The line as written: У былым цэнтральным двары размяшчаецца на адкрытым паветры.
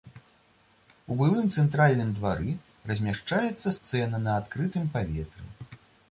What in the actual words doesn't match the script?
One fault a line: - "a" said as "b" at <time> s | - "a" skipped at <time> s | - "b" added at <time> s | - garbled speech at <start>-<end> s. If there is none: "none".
- "сцэна" added at 3.7 s